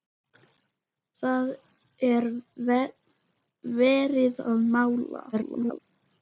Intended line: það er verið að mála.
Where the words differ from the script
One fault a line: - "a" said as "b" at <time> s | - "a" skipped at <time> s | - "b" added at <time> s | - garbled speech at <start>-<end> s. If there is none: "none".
- garbled speech at 5.3-5.8 s